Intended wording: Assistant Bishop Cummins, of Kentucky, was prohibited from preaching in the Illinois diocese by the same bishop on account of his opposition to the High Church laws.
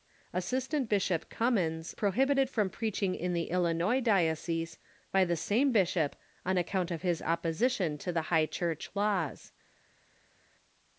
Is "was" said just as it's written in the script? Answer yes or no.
no